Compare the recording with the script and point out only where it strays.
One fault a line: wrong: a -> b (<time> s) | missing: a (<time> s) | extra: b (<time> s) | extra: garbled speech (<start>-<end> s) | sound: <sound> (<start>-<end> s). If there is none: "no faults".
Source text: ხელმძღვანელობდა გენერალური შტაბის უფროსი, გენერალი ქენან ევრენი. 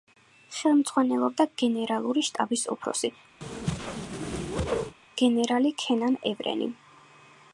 sound: whoosh (3.4-5.0 s)